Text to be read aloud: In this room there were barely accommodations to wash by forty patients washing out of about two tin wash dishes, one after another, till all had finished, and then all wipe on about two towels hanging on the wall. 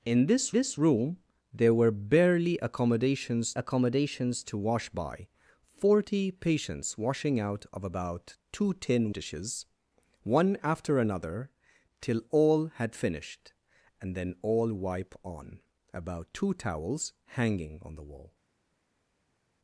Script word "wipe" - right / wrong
right